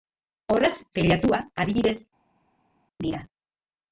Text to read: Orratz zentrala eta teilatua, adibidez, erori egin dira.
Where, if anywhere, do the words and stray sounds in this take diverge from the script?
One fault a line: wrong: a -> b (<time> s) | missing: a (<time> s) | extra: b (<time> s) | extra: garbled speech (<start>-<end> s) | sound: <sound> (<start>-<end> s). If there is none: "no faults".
missing: zentrala eta (0.8 s)
missing: erori egin (2.0 s)